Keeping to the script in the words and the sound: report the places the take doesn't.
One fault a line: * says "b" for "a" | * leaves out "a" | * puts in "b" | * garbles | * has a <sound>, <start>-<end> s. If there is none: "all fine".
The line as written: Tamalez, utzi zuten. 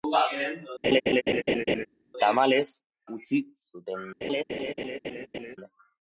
* has a laugh, 0.8-1.9 s
* has a laugh, 4.2-5.6 s